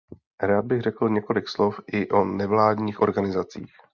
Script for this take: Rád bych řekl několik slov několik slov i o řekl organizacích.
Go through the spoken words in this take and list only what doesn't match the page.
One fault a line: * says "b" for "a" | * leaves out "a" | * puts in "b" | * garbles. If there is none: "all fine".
* leaves out "několik slov"
* says "nevládních" for "řekl"